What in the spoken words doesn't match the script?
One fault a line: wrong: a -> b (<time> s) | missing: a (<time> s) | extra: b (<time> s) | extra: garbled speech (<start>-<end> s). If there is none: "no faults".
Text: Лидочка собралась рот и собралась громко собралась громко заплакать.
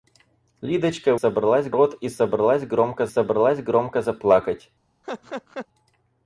no faults